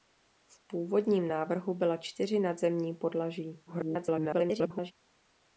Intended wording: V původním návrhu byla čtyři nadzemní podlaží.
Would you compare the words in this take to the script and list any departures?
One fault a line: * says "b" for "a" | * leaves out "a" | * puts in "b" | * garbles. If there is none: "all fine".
* garbles